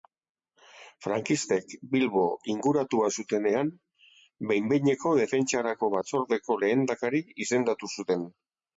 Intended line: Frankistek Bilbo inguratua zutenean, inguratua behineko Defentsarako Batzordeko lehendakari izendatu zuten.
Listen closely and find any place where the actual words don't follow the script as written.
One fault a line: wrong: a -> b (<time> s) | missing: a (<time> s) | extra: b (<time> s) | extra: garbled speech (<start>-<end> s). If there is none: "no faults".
wrong: inguratua -> behin (4.5 s)